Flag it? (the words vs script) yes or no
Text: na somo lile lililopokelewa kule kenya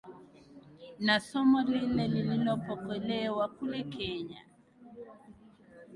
no